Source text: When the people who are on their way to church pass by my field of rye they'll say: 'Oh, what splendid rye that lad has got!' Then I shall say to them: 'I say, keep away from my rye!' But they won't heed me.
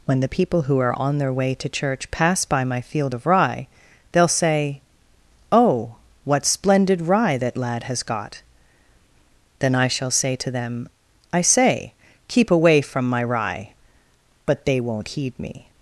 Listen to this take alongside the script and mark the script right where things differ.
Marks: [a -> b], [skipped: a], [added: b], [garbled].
When the people who are on their way to church pass by my field of rye they'll say: 'Oh, what splendid rye that lad has got!' Then I shall say to them: 'I say, keep away from my rye!' But they won't heed me.